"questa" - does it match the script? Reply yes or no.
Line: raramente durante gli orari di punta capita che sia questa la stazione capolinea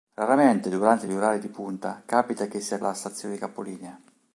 no